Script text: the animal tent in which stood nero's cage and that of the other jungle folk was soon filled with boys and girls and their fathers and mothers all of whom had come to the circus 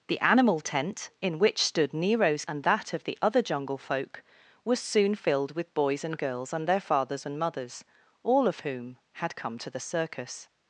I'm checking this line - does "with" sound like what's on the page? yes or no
yes